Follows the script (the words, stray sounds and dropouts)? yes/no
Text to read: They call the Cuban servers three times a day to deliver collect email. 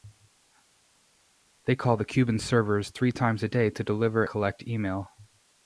yes